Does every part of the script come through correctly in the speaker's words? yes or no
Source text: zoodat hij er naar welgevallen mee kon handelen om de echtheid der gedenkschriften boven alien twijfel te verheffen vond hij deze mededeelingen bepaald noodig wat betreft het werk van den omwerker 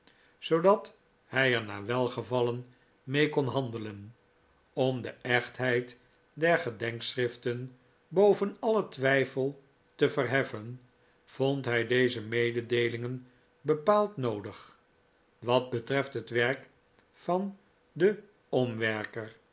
yes